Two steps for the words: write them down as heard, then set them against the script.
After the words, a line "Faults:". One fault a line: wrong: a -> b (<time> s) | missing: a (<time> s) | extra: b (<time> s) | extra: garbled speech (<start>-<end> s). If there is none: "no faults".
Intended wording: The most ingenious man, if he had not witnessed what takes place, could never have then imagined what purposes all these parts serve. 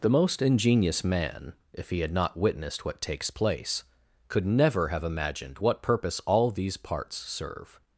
The most ingenious man, if he had not witnessed what takes place, could never have imagined what purpose all these parts serve.
Faults:
missing: then (5.0 s)
wrong: purposes -> purpose (5.8 s)